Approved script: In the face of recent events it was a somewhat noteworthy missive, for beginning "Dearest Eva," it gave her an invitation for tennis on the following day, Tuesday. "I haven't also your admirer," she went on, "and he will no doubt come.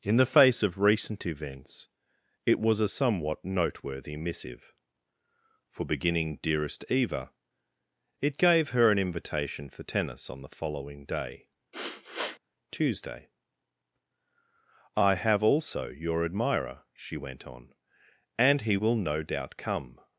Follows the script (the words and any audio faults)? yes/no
no